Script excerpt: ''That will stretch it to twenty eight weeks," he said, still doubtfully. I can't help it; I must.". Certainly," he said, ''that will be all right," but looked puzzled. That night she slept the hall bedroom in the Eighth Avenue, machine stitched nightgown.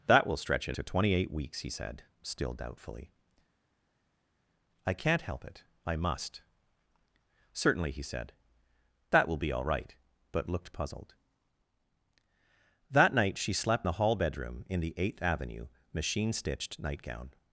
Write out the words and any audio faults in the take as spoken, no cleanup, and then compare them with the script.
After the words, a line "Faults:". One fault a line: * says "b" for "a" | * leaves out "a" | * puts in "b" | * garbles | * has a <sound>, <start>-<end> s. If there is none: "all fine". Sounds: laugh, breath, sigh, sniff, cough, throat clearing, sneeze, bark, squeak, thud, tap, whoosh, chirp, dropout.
''That will stretch it to twenty eight weeks," he said, still doubtfully. I can't help it; I must.". Certainly," he said, ''that will be all right," but looked puzzled. That night she slept the hall bedroom in the Eighth Avenue, machine stitched nightgown.
Faults:
all fine